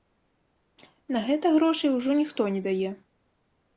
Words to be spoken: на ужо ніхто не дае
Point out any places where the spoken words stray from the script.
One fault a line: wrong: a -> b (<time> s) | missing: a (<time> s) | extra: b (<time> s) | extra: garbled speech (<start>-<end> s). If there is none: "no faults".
extra: гэта грошай (1.3 s)